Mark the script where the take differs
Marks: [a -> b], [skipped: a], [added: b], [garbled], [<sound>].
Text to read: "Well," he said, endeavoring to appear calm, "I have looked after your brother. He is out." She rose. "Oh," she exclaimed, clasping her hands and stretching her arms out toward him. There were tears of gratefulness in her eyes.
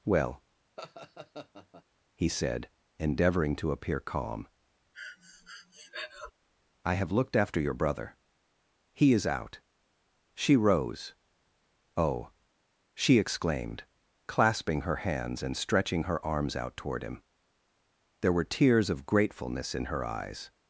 "Well," [laugh] he said, endeavoring to appear calm, [breath] "I have looked after your brother. He is out." She rose. "Oh," she exclaimed, clasping her hands and stretching her arms out toward him. There were tears of gratefulness in her eyes.